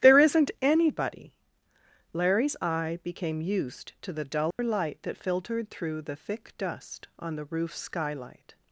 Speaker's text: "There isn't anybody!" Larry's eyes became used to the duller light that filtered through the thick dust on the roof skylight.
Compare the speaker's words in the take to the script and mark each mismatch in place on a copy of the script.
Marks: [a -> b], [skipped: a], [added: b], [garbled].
"There isn't anybody!" Larry's [eyes -> eye] became used to the duller light that filtered through the thick dust on the roof skylight.